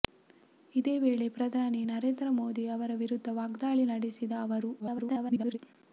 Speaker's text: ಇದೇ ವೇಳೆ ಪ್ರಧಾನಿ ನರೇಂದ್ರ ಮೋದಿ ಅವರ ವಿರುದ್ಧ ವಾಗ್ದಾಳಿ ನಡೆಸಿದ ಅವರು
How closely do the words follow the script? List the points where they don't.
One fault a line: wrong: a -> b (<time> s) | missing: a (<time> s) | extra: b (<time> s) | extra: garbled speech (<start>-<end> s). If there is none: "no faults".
extra: garbled speech (4.8-5.6 s)